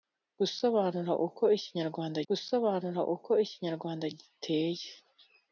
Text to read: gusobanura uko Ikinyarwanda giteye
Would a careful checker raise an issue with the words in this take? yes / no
yes